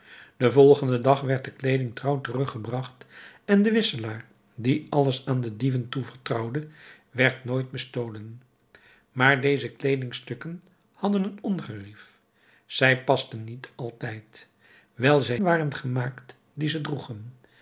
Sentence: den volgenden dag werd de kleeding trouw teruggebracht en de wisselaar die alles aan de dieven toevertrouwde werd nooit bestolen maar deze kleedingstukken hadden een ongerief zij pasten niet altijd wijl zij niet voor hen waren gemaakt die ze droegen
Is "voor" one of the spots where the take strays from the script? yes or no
yes